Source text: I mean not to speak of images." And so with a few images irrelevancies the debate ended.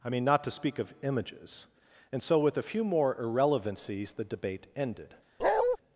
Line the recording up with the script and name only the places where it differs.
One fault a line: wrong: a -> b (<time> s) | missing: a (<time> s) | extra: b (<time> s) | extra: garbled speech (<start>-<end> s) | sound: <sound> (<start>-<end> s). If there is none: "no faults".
wrong: images -> more (2.8 s)
sound: bark (5.4-5.8 s)